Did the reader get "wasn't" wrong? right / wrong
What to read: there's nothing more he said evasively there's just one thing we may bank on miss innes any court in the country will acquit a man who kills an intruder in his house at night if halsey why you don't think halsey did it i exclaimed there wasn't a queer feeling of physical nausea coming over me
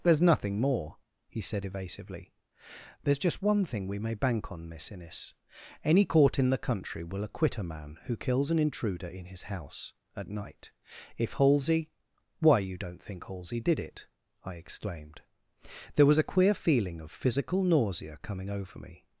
wrong